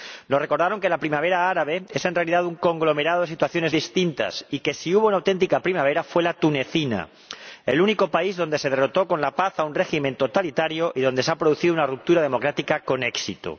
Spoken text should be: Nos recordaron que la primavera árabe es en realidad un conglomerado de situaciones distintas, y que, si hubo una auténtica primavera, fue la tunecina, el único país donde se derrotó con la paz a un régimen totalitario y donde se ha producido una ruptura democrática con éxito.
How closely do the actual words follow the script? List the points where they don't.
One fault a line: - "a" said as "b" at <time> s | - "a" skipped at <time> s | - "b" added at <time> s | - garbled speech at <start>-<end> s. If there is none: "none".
none